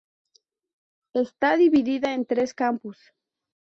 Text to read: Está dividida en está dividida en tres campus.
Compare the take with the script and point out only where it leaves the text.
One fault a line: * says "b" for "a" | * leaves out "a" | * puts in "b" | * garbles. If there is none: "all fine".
* leaves out "está dividida en"